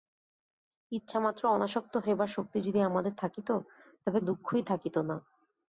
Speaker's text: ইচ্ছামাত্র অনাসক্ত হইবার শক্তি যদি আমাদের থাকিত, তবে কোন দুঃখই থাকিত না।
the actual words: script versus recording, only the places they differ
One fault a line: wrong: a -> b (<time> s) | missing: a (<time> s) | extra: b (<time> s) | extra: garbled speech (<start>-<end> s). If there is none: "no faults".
missing: কোন (4.2 s)